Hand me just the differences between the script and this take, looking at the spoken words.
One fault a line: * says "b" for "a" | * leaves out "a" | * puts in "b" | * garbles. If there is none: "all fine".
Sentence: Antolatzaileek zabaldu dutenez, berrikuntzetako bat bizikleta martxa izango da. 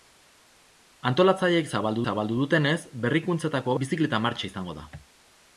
* puts in "zabaldu"
* leaves out "bat"